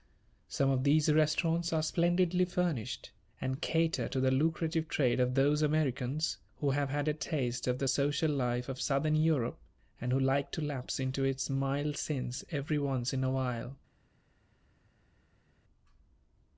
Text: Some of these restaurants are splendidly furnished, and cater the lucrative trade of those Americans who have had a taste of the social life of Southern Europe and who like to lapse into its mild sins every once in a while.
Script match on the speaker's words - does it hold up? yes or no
no